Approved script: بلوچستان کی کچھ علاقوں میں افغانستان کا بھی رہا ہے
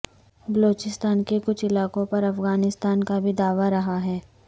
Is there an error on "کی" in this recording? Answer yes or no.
yes